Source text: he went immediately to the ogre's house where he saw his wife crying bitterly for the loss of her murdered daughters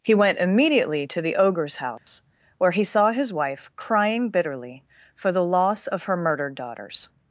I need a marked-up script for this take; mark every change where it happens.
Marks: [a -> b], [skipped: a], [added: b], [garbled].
he went immediately to the ogre's house where he saw his wife crying bitterly for the loss of her murdered daughters